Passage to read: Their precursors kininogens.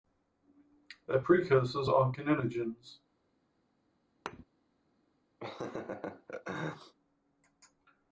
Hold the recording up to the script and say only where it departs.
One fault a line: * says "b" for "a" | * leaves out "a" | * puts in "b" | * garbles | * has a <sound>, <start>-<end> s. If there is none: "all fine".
* puts in "are"
* has a thud, 4.3-4.4 s
* has a laugh, 5.4-6.9 s